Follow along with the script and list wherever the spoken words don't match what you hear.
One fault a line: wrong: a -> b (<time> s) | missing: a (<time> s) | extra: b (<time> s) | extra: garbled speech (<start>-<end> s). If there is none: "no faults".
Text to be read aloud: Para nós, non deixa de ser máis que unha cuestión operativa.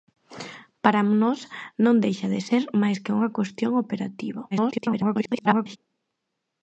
extra: garbled speech (4.5-5.8 s)